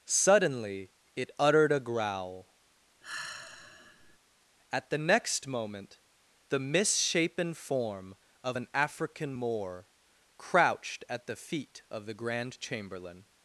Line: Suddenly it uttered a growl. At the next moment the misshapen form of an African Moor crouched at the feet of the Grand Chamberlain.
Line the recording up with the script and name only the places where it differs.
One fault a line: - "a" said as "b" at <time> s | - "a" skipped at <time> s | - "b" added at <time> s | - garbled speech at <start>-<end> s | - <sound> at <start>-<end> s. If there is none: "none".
- sigh at 3.0-4.2 s